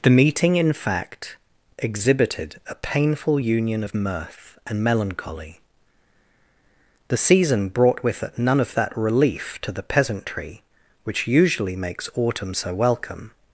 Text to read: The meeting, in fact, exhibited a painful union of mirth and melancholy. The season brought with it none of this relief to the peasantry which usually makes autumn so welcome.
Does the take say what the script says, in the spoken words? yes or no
no